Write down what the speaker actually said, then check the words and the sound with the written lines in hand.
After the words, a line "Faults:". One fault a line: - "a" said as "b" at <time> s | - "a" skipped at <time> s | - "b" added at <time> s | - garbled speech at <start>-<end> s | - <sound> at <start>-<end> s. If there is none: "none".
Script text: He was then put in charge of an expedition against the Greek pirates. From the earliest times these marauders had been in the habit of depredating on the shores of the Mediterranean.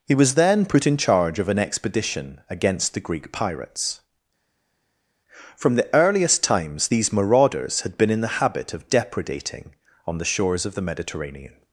He was then put in charge of an expedition against the Greek pirates. From the earliest times these marauders had been in the habit of depredating on the shores of the Mediterranean.
Faults:
none